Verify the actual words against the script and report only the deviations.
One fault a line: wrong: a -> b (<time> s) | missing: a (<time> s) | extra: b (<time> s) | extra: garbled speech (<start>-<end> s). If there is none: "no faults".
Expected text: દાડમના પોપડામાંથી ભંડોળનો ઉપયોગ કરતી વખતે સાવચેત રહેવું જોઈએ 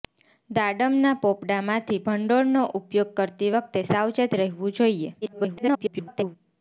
extra: garbled speech (5.2-6.4 s)